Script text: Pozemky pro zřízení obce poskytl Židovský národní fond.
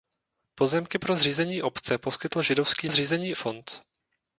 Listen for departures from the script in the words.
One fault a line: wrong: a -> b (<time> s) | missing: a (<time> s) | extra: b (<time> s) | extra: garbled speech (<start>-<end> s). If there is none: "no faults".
wrong: národní -> zřízení (2.9 s)